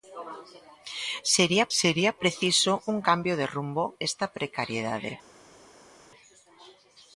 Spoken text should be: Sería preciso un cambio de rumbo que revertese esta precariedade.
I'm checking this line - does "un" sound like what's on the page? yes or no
yes